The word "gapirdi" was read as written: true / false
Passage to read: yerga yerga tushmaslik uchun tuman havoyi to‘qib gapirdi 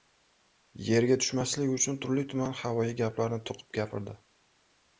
true